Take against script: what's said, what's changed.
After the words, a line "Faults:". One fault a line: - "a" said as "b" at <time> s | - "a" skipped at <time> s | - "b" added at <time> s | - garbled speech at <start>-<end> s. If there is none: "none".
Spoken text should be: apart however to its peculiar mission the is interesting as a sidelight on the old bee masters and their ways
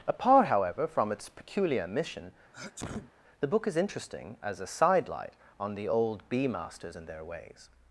apart however from its peculiar mission the book is interesting as a sidelight on the old bee masters and their ways
Faults:
- "to" said as "from" at 0.9 s
- "book" added at 3.5 s